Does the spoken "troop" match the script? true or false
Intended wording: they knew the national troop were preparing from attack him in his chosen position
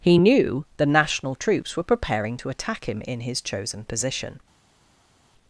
false